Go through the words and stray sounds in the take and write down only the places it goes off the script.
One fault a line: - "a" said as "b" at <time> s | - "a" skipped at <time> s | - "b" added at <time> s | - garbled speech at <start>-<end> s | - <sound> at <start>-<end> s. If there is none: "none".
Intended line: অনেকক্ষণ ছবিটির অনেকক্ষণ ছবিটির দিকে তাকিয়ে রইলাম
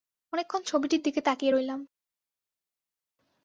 - "অনেকক্ষণ ছবিটির" skipped at 1.0 s